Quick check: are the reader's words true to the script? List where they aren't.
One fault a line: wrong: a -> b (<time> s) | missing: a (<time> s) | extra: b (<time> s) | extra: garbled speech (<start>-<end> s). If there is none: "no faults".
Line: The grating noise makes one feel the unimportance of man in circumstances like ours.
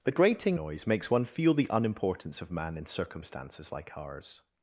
no faults